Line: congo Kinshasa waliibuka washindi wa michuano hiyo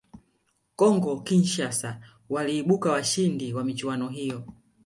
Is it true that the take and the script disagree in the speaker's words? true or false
false